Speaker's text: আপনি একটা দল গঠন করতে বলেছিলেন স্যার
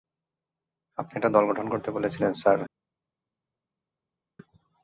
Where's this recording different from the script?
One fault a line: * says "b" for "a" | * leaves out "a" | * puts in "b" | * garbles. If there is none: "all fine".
all fine